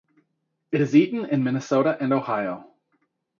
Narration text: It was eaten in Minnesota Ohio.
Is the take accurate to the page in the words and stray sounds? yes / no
no